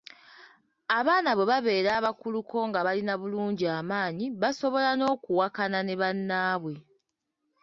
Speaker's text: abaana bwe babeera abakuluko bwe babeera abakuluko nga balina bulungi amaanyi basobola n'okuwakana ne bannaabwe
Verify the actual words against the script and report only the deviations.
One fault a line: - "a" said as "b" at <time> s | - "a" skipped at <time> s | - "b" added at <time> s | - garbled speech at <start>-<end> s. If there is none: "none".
- "bwe babeera abakuluko" skipped at 2.6 s